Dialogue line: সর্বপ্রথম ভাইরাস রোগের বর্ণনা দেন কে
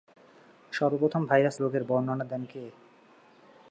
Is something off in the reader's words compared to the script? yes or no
no